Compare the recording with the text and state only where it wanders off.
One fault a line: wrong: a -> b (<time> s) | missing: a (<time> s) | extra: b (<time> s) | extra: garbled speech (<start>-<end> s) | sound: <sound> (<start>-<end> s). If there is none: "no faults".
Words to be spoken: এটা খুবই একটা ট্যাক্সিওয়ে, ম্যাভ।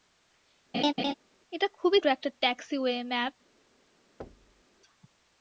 sound: laugh (0.7-1.1 s)
sound: thud (4.2-4.6 s)